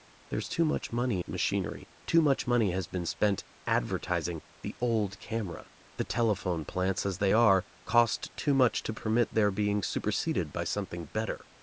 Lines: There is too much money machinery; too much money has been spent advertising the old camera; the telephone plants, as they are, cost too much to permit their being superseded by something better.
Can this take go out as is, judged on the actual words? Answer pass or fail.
pass